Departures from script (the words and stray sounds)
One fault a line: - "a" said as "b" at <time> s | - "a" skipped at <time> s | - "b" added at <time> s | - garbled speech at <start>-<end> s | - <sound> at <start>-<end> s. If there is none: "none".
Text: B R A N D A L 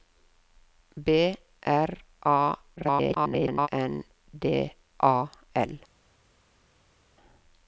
- garbled speech at 2.8-3.7 s